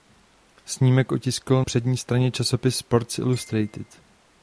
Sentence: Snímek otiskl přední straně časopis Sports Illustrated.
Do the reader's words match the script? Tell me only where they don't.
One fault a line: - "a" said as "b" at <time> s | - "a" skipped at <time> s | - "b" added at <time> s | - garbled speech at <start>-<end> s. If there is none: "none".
none